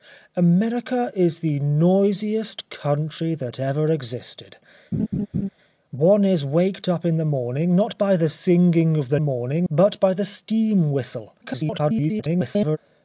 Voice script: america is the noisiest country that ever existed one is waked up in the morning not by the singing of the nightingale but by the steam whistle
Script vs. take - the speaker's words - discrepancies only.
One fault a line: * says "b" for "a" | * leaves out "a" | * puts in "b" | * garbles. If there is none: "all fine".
* says "morning" for "nightingale"
* garbles